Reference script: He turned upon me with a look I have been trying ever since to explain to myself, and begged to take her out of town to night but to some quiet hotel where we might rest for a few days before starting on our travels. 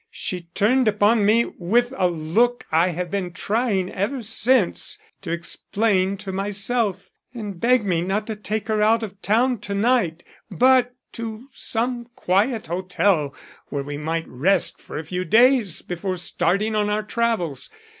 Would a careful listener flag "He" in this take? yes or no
yes